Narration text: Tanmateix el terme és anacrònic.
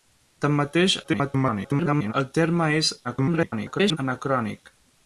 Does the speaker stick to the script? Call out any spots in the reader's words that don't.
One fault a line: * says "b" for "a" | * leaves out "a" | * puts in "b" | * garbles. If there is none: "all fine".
* garbles
* garbles